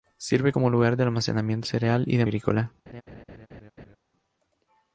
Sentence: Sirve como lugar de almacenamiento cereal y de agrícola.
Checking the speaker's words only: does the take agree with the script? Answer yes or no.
yes